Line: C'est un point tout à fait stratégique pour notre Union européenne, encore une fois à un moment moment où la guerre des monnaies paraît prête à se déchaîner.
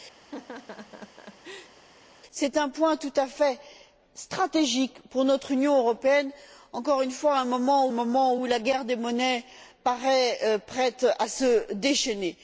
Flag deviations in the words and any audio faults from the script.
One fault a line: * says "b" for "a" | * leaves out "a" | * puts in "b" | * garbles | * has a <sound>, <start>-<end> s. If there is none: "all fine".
* has a laugh, 0.2-1.7 s